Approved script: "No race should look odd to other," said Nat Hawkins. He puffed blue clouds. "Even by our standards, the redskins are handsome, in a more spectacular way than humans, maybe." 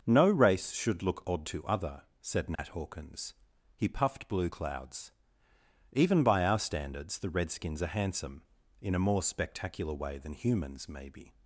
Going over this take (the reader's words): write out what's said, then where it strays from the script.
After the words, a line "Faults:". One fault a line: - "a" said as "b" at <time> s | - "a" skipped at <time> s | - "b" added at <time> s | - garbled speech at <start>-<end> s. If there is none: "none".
"No race should look odd to other," said Nat Hawkins. He puffed blue clouds. "Even by our standards, the redskins are handsome, in a more spectacular way than humans, maybe."
Faults:
none